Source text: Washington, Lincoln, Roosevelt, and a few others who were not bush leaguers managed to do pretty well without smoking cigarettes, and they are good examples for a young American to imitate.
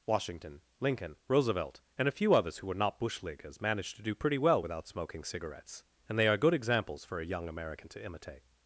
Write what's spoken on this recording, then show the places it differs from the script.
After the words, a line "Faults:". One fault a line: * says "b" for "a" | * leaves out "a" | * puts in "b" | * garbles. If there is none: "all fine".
Washington, Lincoln, Roosevelt, and a few others who were not bush leaguers managed to do pretty well without smoking cigarettes, and they are good examples for a young American to imitate.
Faults:
all fine